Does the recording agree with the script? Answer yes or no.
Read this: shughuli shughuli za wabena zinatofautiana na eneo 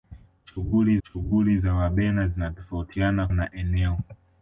yes